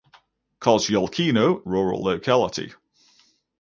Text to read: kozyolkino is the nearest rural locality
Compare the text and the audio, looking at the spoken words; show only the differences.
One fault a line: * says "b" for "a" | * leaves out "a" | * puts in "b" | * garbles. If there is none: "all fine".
* leaves out "is the nearest"